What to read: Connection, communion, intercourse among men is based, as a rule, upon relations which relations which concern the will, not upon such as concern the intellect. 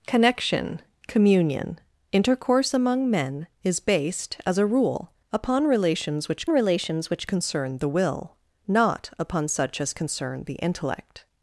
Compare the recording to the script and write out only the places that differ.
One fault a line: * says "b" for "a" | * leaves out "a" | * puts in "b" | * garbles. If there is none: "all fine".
all fine